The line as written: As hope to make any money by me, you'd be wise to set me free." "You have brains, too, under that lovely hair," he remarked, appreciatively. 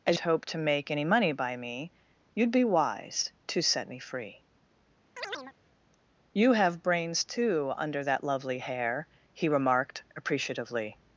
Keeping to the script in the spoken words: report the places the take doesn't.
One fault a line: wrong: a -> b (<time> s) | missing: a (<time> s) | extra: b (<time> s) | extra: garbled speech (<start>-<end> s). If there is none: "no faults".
no faults